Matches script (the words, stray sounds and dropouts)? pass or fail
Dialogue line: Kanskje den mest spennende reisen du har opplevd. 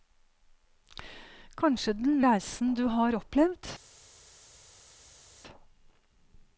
fail